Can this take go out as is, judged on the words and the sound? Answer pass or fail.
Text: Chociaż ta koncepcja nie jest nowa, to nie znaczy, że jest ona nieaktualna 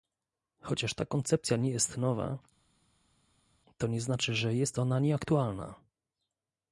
pass